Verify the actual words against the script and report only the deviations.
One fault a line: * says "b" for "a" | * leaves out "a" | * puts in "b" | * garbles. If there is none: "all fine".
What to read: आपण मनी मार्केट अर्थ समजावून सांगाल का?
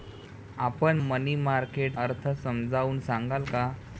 all fine